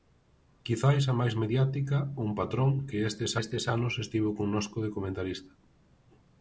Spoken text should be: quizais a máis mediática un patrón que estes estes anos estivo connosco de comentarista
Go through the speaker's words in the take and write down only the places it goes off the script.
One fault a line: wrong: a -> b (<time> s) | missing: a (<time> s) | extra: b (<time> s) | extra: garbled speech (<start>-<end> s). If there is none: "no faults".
no faults